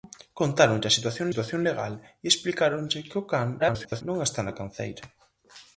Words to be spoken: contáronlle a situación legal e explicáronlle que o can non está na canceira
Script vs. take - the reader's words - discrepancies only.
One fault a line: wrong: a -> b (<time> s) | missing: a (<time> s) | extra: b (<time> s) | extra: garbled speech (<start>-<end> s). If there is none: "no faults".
extra: situación (1.3 s)
extra: garbled speech (3.6-4.0 s)